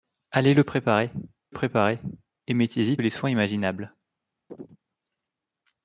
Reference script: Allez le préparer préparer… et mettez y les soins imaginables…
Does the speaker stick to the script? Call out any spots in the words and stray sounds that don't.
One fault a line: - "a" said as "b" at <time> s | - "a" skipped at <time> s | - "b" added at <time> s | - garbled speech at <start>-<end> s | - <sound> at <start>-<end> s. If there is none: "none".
- chirp at 4.5-4.8 s